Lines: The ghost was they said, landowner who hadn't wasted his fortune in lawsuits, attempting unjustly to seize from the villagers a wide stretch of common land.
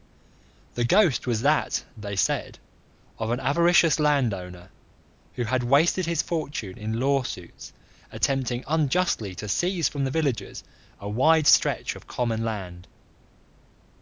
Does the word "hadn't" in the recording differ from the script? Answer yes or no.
yes